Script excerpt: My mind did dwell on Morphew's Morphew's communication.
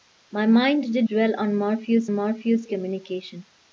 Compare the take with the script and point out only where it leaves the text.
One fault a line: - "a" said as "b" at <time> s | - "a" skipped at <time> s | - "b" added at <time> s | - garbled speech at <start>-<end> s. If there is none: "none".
none